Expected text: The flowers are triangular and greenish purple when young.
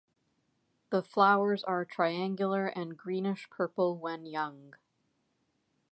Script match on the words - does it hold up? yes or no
yes